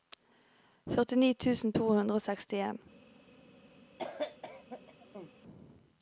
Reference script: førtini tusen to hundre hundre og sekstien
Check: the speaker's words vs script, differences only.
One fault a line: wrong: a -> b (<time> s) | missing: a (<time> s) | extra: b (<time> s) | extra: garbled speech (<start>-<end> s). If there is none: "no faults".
missing: hundre (2.2 s)